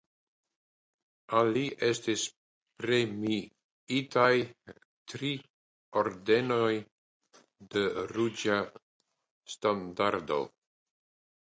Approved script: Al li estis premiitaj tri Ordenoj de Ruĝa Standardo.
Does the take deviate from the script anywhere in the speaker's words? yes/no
no